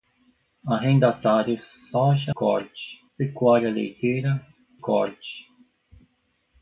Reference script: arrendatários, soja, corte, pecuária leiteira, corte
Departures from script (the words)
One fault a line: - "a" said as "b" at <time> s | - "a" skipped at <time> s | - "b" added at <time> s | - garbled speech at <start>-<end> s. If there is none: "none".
none